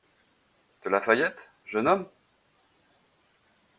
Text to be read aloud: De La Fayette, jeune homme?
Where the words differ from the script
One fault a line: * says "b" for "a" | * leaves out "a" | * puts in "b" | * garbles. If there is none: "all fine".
all fine